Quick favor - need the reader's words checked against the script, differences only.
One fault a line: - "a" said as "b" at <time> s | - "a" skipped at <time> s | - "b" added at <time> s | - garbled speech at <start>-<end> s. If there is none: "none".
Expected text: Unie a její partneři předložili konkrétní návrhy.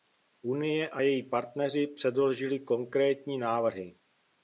none